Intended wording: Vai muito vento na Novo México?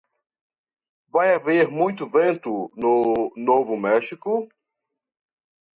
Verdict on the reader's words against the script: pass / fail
fail